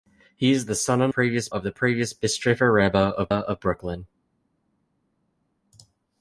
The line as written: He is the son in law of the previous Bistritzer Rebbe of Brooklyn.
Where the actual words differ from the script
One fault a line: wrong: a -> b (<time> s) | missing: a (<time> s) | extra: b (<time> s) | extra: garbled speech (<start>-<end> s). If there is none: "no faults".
wrong: law -> previous (1.1 s)
extra: of (3.3 s)